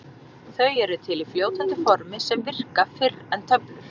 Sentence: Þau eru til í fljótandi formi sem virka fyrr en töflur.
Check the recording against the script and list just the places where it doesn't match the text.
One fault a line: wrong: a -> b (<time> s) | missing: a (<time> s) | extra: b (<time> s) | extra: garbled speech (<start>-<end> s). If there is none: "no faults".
no faults